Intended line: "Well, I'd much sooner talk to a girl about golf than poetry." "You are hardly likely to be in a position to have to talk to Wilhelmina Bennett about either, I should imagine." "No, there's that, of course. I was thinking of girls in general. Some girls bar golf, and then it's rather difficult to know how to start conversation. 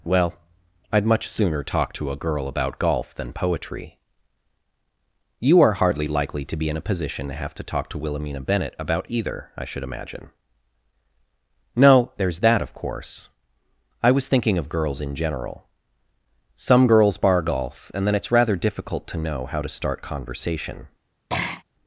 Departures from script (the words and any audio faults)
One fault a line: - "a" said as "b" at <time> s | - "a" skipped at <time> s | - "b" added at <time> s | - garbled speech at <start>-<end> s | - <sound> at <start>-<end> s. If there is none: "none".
- throat clearing at 21.3-21.6 s